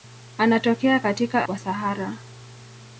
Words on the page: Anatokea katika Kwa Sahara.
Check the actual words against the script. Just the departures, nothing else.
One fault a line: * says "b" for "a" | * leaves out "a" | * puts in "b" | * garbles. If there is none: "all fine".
all fine